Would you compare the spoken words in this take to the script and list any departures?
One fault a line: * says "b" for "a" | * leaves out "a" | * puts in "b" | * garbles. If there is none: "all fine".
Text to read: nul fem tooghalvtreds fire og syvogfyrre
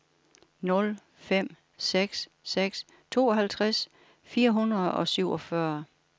* puts in "seks seks"
* puts in "hundrede"